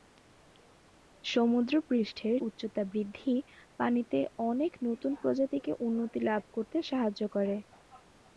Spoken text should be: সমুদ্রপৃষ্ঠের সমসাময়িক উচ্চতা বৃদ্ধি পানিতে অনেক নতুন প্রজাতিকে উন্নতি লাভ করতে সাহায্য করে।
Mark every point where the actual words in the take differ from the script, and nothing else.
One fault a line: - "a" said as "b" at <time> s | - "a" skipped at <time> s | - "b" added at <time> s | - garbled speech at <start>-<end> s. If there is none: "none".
- "সমসাময়িক" skipped at 2.4 s